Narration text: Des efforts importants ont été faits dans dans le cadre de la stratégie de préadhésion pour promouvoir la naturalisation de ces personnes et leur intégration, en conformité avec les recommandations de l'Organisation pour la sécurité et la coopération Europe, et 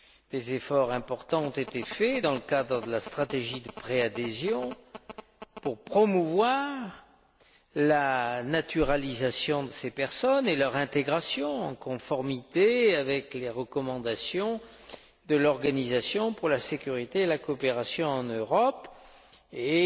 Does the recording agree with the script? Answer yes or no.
no